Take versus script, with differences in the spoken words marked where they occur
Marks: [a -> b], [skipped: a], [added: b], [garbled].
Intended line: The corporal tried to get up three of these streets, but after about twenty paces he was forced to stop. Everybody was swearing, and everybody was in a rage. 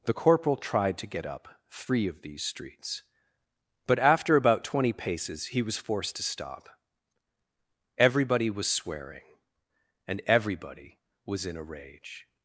The corporal tried to get up three of these streets, but after about twenty paces he was forced to stop. Everybody was swearing, and everybody was in a rage.